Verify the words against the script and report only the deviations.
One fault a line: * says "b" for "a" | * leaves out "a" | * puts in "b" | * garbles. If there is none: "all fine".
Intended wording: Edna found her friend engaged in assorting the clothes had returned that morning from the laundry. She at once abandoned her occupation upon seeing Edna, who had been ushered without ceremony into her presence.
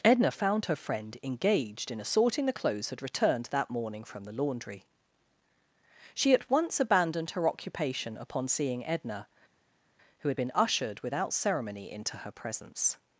all fine